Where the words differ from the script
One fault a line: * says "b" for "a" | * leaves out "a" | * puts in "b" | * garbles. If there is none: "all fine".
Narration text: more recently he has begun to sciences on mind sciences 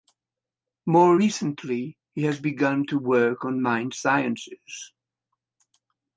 * says "work" for "sciences"